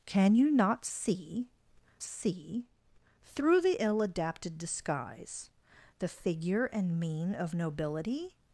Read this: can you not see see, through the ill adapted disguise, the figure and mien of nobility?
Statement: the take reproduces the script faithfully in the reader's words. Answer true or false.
true